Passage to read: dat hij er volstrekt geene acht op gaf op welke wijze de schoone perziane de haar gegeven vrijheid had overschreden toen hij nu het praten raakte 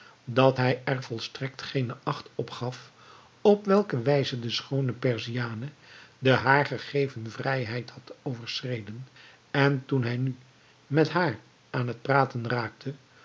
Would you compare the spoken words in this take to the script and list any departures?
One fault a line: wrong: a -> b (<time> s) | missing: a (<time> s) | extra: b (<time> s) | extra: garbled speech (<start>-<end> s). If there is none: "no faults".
extra: en (9.5 s)
extra: met haar aan (10.9 s)